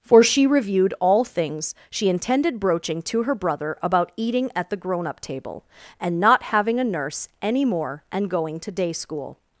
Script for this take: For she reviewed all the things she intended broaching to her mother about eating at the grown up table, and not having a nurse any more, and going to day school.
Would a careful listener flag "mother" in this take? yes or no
yes